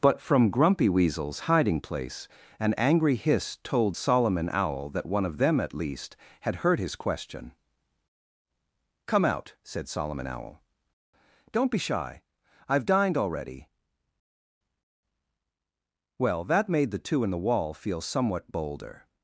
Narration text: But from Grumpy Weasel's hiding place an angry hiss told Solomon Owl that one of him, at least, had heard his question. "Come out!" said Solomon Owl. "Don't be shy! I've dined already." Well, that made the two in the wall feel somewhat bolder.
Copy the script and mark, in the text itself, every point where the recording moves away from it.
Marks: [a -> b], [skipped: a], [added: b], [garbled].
But from Grumpy Weasel's hiding place an angry hiss told Solomon Owl that one of [him, -> them] at least, had heard his question. "Come out!" said Solomon Owl. "Don't be shy! I've dined already." Well, that made the two in the wall feel somewhat bolder.